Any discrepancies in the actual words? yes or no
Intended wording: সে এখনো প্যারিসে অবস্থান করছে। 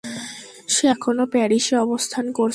no